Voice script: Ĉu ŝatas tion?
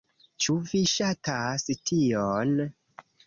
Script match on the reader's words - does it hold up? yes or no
no